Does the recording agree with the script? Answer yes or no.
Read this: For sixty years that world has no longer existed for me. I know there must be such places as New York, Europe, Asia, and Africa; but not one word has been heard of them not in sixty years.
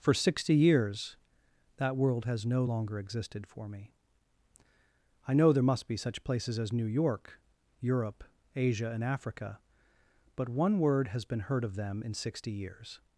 no